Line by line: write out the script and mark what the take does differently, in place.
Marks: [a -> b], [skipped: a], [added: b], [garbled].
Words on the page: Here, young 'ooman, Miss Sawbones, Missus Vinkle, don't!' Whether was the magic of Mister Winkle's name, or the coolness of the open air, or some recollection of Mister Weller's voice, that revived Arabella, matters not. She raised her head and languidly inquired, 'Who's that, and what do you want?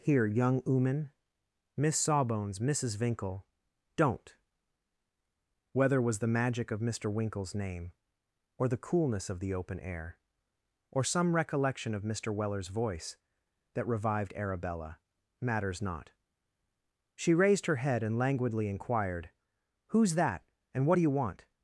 Here, young 'ooman, Miss Sawbones, Missus Vinkle, don't!' Whether was the magic of Mister Winkle's name, or the coolness of the open air, or some recollection of Mister Weller's voice, that revived Arabella, matters not. She raised her head and languidly inquired, 'Who's that, and what do you want?